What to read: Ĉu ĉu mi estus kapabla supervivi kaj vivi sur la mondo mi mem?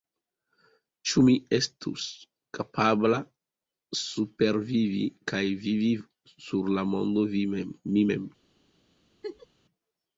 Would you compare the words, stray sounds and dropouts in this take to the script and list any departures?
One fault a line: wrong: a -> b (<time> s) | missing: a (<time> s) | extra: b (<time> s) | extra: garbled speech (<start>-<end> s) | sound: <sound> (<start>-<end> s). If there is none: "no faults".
missing: ĉu (1.2 s)
sound: laugh (9.2-9.5 s)